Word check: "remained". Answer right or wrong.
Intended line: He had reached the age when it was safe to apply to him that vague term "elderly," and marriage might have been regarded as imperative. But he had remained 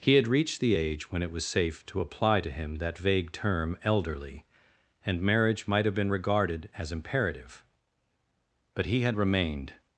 right